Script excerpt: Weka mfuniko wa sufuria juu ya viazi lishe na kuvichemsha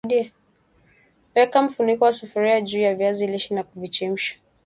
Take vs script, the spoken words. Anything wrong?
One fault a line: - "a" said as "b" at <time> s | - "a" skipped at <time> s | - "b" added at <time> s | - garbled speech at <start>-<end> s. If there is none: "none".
none